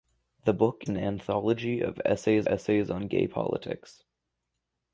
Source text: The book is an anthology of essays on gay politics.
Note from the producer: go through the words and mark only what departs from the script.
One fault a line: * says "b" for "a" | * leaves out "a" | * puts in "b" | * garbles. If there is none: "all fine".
* leaves out "is"
* puts in "essays"